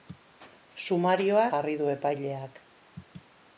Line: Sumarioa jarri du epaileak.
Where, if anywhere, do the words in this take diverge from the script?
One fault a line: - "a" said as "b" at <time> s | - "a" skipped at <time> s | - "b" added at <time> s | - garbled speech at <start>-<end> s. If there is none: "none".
none